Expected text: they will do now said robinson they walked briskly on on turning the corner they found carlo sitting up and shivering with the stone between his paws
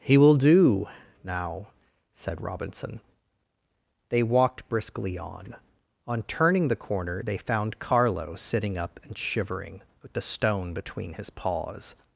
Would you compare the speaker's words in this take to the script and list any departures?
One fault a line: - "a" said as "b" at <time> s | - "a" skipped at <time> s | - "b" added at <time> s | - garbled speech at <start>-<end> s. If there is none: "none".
- "they" said as "he" at 0.0 s